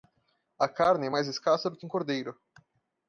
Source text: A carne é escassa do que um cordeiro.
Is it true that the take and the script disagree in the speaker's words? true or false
true